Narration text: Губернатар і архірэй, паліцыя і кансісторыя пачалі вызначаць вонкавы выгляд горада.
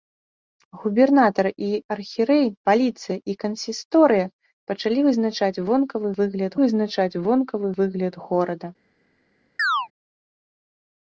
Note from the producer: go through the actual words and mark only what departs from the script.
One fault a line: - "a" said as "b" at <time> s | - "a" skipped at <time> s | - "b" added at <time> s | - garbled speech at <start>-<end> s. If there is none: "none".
- "вызначаць вонкавы выгляд" added at 6.6 s